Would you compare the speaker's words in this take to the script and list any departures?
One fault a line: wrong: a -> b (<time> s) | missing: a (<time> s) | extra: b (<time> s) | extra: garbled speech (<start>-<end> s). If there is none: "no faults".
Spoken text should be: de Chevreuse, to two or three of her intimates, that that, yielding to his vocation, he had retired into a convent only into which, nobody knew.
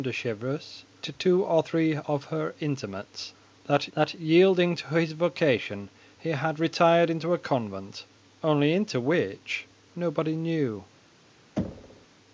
no faults